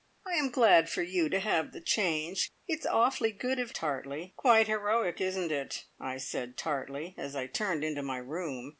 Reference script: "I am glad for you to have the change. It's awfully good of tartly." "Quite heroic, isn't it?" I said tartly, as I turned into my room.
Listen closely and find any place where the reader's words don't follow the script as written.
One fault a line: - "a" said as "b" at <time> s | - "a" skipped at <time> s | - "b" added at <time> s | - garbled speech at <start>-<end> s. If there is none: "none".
none